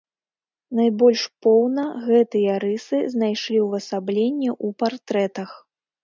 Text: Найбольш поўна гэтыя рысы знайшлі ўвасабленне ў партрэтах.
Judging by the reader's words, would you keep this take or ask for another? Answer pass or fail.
pass